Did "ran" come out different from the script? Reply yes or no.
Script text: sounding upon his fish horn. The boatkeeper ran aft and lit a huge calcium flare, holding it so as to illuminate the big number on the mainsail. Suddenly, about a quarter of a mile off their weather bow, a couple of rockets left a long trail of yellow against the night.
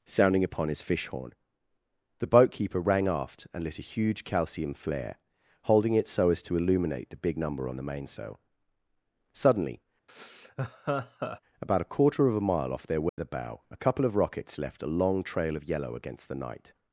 yes